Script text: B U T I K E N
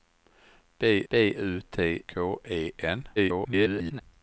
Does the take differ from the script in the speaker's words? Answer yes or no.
yes